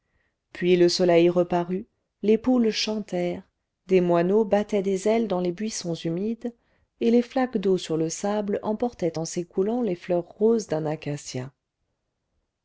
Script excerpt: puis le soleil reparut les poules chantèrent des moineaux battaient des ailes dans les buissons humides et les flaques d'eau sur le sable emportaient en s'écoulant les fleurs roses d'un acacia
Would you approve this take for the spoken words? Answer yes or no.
yes